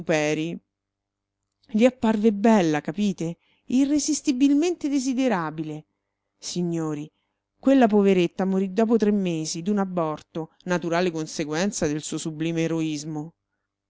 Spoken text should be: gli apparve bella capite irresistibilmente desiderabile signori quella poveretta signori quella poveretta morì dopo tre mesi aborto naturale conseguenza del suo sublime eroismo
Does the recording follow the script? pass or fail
fail